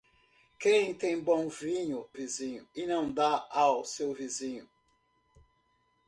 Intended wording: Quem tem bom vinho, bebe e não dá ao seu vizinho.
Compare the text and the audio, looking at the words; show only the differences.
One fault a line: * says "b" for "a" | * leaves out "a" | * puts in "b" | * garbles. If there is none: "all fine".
* says "vizinho" for "bebe"